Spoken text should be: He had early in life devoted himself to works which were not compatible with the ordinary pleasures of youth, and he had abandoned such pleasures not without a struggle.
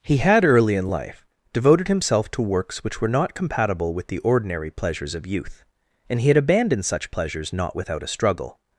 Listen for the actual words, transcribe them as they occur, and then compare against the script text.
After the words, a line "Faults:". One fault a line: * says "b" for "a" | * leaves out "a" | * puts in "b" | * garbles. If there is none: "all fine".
He had early in life devoted himself to works which were not compatible with the ordinary pleasures of youth, and he had abandoned such pleasures not without a struggle.
Faults:
all fine